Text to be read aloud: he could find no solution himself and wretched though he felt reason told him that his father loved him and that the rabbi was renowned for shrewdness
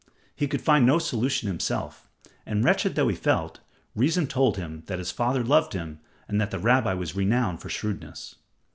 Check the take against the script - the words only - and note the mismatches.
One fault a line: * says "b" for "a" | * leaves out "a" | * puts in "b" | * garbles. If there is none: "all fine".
all fine